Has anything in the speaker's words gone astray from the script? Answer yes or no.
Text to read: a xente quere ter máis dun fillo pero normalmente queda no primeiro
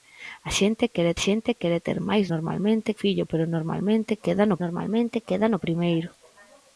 yes